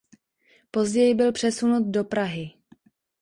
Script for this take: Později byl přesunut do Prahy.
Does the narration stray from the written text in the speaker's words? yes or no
no